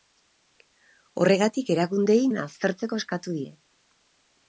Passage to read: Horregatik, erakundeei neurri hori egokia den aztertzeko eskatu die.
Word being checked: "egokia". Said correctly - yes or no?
no